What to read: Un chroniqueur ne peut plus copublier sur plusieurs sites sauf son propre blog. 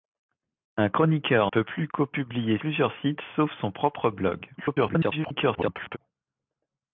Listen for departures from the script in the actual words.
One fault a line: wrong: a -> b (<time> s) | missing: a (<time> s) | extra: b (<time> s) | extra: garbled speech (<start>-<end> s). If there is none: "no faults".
missing: ne (1.5 s)
missing: sur (2.6 s)
extra: garbled speech (4.6-6.0 s)